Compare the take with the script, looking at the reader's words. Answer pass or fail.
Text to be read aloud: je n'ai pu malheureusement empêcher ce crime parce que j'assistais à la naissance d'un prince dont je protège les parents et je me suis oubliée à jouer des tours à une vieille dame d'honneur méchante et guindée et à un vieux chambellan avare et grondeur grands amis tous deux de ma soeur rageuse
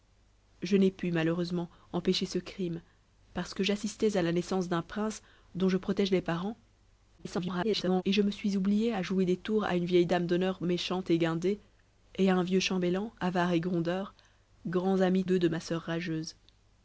fail